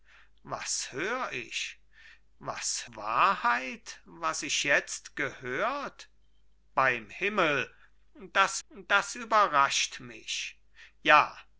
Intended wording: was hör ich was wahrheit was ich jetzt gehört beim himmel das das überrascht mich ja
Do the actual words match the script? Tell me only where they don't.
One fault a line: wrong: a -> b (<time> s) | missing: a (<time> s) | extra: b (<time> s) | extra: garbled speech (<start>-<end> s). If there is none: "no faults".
no faults